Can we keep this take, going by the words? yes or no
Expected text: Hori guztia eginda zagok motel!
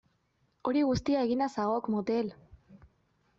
yes